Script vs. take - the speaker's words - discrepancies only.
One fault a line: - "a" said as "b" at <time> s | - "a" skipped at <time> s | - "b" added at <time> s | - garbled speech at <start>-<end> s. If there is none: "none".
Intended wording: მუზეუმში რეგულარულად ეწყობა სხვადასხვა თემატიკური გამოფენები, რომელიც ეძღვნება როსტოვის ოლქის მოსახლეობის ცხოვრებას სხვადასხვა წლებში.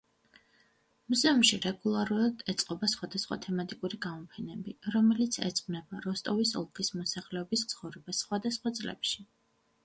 none